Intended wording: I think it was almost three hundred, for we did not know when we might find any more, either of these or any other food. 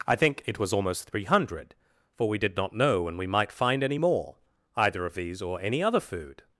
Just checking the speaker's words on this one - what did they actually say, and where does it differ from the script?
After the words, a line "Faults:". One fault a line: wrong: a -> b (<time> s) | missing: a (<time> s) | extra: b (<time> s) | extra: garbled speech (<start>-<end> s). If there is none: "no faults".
I think it was almost three hundred, for we did not know when we might find any more, either of these or any other food.
Faults:
no faults